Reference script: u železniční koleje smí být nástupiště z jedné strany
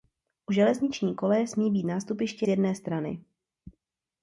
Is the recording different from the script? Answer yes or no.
no